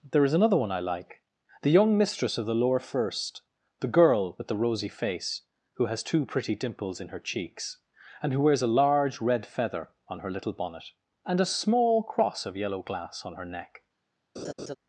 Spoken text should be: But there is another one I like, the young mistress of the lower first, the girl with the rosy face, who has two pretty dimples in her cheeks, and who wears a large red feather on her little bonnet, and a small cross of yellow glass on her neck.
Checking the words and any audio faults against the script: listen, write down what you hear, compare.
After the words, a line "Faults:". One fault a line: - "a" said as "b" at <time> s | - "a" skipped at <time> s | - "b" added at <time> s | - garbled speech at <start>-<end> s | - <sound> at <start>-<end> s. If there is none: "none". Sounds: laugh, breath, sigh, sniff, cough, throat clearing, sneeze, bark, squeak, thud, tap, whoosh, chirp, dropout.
there is another one I like, the young mistress of the lower first, the girl with the rosy face, who has two pretty dimples in her cheeks, and who wears a large red feather on her little bonnet, and a small cross of yellow glass on her neck.
Faults:
- "But" skipped at 0.1 s
- laugh at 14.4-14.8 s